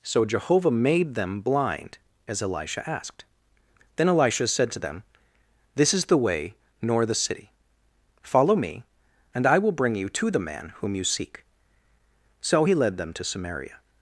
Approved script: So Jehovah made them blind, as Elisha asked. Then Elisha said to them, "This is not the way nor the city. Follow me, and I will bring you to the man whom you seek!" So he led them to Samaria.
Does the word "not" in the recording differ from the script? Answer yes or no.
yes